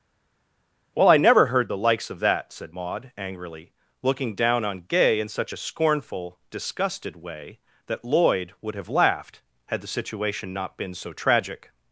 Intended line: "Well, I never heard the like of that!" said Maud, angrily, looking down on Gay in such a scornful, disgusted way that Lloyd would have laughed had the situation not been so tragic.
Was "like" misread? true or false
true